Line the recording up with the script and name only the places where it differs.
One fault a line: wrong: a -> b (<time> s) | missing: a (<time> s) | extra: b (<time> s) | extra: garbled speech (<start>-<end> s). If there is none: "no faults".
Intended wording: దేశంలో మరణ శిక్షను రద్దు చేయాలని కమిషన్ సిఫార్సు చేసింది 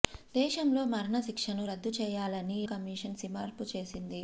no faults